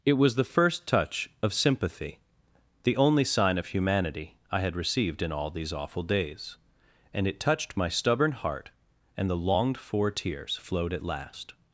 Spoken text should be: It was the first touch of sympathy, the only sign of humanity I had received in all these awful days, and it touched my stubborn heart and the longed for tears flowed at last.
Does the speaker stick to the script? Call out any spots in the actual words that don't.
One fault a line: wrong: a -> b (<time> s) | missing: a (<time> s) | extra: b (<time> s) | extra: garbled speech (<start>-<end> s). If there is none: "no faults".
no faults